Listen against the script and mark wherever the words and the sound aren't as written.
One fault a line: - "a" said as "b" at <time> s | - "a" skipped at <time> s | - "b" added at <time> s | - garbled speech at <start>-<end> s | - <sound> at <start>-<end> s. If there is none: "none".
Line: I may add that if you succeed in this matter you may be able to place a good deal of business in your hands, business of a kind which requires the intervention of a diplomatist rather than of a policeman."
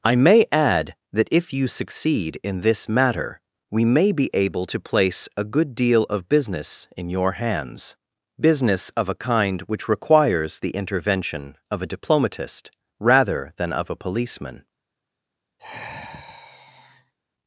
- "you" said as "we" at 3.7 s
- sigh at 15.6-17.1 s